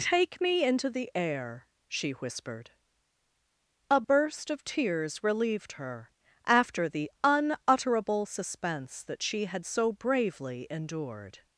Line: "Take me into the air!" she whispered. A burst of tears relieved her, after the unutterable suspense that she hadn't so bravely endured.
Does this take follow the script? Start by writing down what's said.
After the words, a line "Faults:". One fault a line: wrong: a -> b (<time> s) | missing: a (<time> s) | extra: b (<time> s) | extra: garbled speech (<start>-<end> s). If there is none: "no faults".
"Take me into the air!" she whispered. A burst of tears relieved her, after the unutterable suspense that she had so bravely endured.
Faults:
wrong: hadn't -> had (9.5 s)